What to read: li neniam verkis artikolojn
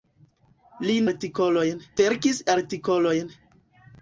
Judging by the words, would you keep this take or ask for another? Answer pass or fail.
fail